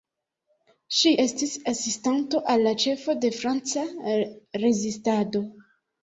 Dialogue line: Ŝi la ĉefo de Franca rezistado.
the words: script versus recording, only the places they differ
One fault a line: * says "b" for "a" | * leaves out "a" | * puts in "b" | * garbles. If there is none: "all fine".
* puts in "estis asistanto al"